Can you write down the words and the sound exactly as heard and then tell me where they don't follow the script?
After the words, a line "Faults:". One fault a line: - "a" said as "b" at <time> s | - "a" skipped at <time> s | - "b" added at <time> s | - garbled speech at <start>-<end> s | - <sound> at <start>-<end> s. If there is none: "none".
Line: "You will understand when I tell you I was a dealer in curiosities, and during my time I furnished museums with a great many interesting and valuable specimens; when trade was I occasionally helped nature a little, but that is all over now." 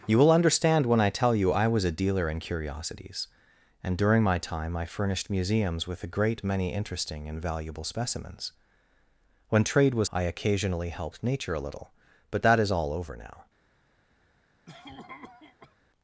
"You will understand when I tell you I was a dealer in curiosities, and during my time I furnished museums with a great many interesting and valuable specimens; when trade was I occasionally helped nature a little, but that is all over now."
Faults:
- cough at 14.7-15.8 s